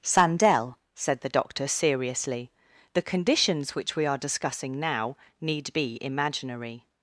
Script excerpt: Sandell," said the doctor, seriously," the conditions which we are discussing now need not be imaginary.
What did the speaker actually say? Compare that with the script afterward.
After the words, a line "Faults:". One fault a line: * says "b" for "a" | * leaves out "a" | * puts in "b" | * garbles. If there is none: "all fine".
Sandell," said the doctor, seriously," the conditions which we are discussing now need be imaginary.
Faults:
* leaves out "not"